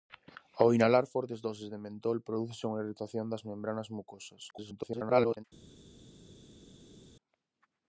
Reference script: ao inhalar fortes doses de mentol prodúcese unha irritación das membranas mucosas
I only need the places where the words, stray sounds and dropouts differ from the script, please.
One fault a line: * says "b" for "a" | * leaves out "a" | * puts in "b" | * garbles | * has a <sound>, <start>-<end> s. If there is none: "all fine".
* garbles